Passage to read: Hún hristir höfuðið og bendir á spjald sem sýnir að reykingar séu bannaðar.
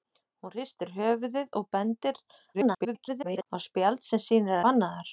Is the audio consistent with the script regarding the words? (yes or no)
no